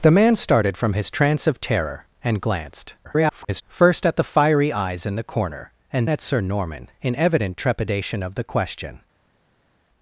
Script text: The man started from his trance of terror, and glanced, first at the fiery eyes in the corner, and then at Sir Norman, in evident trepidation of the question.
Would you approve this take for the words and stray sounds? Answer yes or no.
no